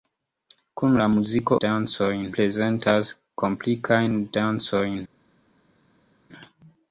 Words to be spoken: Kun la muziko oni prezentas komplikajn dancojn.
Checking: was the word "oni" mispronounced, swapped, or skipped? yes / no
yes